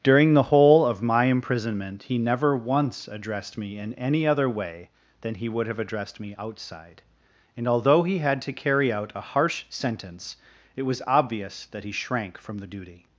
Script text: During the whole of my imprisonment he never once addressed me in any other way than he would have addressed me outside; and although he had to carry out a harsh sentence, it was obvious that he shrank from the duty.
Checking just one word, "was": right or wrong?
right